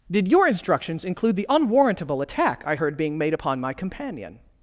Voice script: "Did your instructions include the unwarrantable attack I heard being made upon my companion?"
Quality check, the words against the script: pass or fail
pass